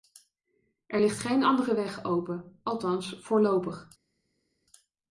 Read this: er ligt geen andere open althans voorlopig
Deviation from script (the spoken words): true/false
true